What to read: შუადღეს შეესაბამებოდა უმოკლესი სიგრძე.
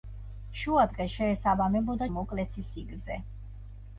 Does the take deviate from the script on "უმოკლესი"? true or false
false